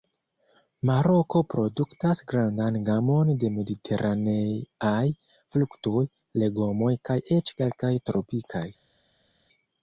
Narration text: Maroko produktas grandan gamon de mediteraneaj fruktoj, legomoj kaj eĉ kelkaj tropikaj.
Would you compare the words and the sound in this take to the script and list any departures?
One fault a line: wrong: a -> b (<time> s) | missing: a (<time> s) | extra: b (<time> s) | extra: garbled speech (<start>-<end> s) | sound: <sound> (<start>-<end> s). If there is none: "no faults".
no faults